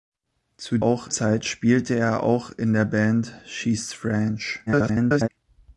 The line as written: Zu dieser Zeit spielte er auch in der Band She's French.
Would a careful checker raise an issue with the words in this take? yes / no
yes